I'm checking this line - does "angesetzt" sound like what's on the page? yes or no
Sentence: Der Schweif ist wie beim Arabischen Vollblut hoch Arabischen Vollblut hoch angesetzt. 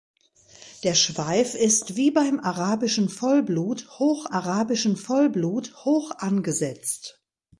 yes